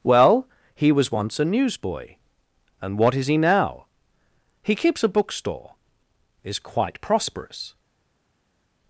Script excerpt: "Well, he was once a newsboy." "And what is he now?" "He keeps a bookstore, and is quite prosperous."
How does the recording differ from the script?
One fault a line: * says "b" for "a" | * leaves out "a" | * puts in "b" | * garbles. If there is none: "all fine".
* leaves out "and"